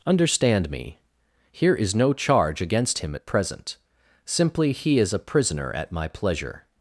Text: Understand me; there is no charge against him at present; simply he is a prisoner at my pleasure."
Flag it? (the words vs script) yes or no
yes